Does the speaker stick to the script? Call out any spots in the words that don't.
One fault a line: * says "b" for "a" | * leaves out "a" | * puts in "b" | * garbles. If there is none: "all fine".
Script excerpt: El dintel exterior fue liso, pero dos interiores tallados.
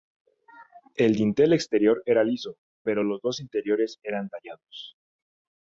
* says "era" for "fue"
* puts in "los"
* puts in "eran"